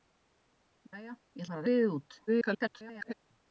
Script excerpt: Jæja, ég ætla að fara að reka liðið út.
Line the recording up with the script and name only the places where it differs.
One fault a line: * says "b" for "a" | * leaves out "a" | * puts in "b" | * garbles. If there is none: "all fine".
* leaves out "ætla"
* leaves out "reka"
* garbles